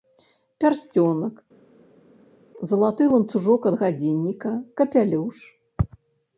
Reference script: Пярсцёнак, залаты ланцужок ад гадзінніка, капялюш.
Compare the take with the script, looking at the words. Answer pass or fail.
pass